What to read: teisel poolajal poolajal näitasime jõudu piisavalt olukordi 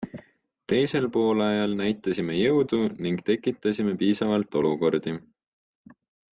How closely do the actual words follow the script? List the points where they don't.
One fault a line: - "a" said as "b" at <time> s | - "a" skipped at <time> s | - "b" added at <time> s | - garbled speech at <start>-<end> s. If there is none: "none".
- "poolajal" skipped at 1.8 s
- "ning tekitasime" added at 3.1 s